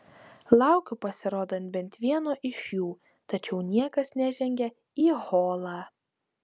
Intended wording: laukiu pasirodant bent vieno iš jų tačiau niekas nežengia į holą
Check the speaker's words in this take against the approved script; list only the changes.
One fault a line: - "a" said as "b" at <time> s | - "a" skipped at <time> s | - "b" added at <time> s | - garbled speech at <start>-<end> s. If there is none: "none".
none